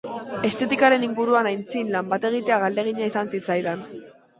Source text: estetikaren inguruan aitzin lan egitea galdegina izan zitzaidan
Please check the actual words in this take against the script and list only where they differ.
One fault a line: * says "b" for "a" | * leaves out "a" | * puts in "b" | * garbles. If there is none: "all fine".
* puts in "bat"